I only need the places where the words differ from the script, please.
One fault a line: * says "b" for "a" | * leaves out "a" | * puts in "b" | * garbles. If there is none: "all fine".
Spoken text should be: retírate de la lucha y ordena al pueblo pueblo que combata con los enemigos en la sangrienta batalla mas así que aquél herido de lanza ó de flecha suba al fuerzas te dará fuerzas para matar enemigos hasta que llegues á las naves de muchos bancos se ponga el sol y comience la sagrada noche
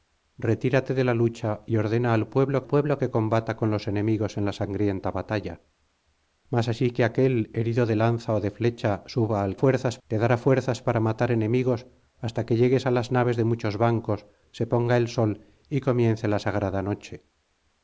all fine